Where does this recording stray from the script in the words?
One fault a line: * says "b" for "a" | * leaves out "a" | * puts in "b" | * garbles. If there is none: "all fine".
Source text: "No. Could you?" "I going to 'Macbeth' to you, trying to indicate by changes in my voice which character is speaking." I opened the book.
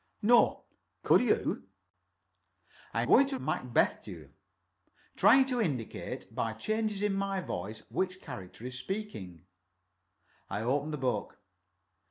all fine